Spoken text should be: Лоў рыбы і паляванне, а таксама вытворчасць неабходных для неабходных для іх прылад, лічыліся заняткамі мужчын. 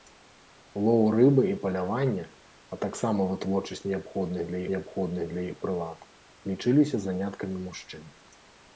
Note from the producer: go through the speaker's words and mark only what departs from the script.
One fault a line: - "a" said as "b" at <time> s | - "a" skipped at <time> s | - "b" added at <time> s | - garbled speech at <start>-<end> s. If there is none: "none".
none